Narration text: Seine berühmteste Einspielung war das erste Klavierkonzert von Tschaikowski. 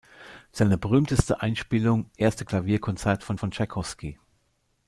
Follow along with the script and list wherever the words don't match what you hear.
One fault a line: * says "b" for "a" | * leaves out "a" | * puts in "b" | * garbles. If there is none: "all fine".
* leaves out "war das"
* puts in "von"